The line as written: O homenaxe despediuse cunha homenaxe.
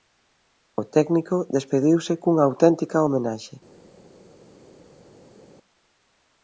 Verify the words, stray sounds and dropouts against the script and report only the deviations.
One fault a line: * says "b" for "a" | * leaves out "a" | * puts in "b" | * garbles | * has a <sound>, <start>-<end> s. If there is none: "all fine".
* says "técnico" for "homenaxe"
* puts in "auténtica"